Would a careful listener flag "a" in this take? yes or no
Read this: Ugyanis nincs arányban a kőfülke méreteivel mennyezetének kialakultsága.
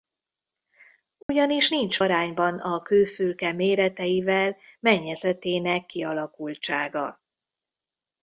no